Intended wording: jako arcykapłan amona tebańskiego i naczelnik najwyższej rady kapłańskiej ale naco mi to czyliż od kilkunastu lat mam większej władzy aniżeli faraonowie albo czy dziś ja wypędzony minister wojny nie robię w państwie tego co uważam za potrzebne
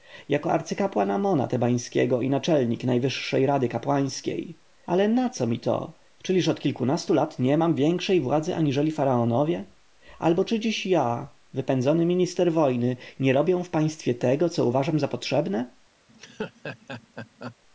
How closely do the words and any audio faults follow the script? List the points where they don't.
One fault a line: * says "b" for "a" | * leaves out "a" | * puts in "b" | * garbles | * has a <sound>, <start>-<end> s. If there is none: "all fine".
* puts in "nie"
* has a laugh, 16.1-17.6 s